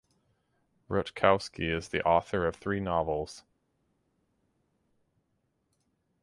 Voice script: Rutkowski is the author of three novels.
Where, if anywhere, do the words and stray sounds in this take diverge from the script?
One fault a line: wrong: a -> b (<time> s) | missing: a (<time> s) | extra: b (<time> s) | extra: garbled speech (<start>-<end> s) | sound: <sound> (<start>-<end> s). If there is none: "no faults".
no faults